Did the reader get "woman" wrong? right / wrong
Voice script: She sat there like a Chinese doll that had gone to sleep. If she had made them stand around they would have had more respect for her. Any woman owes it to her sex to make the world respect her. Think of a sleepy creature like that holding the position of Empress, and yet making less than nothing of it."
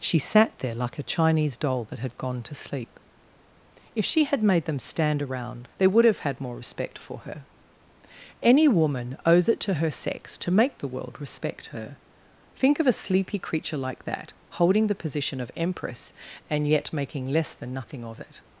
right